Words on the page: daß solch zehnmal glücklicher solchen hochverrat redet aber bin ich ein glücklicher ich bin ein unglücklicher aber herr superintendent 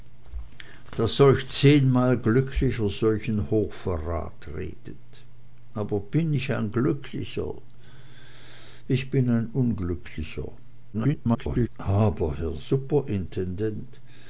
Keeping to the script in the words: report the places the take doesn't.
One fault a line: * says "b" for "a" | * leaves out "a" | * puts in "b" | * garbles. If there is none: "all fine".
* garbles